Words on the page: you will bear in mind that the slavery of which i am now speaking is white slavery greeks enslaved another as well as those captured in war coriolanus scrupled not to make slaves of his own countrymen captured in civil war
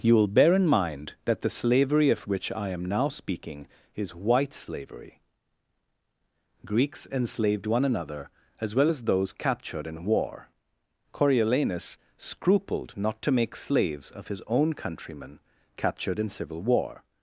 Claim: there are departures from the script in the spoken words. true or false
true